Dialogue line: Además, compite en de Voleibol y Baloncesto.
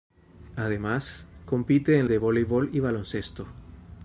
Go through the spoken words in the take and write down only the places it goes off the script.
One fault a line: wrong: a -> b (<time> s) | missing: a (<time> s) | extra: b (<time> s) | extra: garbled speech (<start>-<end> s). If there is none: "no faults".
no faults